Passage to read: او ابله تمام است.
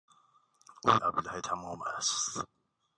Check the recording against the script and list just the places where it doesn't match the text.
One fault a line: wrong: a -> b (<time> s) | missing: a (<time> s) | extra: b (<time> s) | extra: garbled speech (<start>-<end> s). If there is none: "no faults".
no faults